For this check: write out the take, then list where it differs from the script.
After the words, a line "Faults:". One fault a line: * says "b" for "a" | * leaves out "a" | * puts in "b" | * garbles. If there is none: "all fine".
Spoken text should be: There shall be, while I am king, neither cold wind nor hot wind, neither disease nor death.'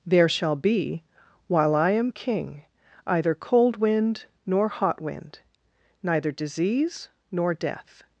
There shall be, while I am king, either cold wind nor hot wind, neither disease nor death.'
Faults:
* says "either" for "neither"